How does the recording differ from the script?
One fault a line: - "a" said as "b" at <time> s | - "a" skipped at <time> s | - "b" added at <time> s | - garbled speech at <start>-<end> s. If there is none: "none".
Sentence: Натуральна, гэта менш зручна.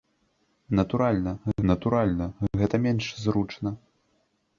- "натуральна" added at 1.7 s